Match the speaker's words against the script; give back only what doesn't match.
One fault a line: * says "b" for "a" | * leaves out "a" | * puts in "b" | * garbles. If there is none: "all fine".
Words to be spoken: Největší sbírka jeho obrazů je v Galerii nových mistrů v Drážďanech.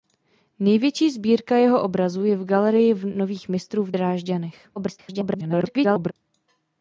* garbles